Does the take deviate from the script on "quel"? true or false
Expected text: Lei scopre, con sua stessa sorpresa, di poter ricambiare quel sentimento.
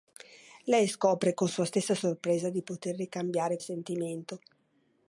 true